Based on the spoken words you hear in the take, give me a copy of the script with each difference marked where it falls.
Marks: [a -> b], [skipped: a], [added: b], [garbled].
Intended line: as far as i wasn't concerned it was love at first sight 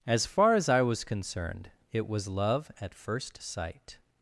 as far as i [wasn't -> was] concerned it was love at first sight